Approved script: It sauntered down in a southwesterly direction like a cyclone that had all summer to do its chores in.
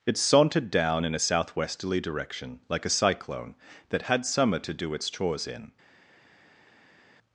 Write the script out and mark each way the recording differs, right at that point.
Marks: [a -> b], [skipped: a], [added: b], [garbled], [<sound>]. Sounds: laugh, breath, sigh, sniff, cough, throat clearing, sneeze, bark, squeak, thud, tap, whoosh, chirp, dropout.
It sauntered down in a southwesterly direction like a cyclone that had [skipped: all] summer to do its chores in.